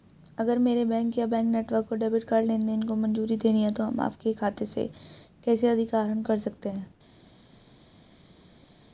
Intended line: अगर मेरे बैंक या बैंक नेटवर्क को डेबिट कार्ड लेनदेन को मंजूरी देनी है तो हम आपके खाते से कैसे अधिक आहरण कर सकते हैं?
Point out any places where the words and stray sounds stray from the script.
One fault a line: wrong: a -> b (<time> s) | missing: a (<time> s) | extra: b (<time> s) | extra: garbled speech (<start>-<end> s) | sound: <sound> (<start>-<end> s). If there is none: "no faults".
no faults